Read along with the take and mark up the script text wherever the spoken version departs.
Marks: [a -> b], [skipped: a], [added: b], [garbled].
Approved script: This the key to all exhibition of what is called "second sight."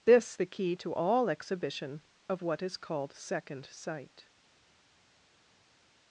This the key to all exhibition of what is called "second sight."